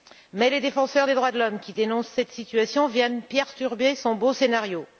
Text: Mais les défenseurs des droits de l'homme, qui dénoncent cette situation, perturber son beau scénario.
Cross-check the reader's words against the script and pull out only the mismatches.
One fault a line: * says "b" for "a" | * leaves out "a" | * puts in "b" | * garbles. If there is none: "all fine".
* puts in "viennent"